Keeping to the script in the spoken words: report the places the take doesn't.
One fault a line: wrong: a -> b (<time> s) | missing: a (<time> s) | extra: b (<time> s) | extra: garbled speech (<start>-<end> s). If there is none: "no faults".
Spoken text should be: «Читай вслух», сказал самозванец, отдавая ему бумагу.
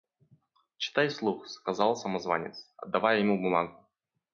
no faults